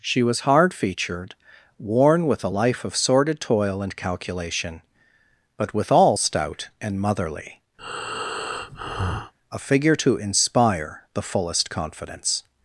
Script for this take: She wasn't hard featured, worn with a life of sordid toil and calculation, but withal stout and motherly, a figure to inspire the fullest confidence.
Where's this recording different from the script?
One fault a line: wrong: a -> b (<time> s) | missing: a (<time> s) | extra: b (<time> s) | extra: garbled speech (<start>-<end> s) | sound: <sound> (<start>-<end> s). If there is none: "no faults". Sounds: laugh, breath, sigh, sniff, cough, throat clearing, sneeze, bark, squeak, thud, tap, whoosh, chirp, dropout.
wrong: wasn't -> was (0.2 s)
sound: breath (7.8-9.3 s)